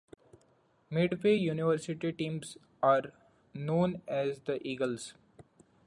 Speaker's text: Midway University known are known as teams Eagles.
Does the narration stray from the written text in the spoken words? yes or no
yes